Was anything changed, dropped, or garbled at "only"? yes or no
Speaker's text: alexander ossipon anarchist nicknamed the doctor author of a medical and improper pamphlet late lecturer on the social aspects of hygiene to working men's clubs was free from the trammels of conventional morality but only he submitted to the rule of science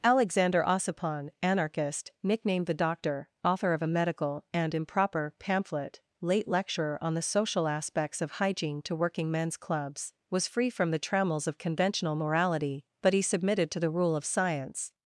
yes